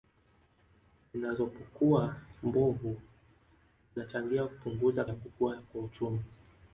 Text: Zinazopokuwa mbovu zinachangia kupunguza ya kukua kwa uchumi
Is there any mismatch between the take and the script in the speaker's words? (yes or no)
no